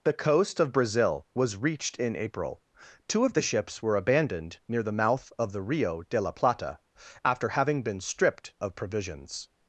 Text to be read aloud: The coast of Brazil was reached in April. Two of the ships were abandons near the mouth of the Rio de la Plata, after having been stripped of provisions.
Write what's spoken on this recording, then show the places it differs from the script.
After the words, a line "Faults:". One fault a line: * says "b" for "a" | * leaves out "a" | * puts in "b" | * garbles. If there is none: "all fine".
The coast of Brazil was reached in April. Two of the ships were abandoned near the mouth of the Rio de la Plata, after having been stripped of provisions.
Faults:
* says "abandoned" for "abandons"